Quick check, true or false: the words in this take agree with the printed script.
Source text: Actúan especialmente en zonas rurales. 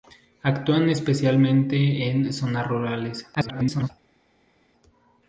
false